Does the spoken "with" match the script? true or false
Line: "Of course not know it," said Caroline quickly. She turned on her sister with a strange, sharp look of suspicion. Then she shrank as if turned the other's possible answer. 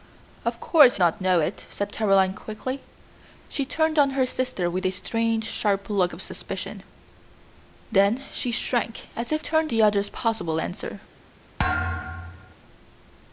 true